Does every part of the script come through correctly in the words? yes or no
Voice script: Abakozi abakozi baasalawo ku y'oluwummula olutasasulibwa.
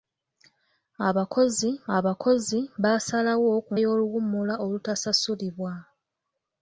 yes